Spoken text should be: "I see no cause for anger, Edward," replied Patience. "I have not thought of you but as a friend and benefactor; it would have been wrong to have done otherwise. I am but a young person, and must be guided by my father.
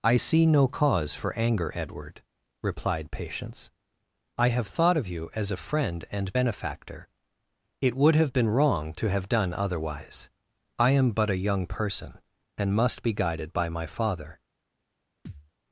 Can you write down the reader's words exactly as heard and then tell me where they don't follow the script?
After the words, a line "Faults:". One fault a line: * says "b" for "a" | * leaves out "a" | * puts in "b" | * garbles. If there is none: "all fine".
"I see no cause for anger, Edward," replied Patience. "I have thought of you as a friend and benefactor; it would have been wrong to have done otherwise. I am but a young person, and must be guided by my father.
Faults:
* leaves out "not"
* leaves out "but"